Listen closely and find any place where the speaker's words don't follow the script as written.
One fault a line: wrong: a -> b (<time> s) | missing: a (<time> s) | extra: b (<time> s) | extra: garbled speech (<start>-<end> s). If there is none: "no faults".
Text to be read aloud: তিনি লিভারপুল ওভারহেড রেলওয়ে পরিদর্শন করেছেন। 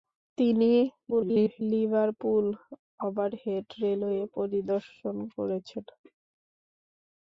extra: garbled speech (1.1-1.6 s)